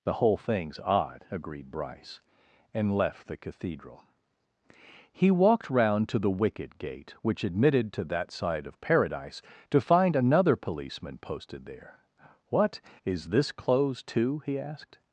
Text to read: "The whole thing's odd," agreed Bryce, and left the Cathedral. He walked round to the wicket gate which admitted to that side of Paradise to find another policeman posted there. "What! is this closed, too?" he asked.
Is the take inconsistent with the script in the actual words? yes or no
no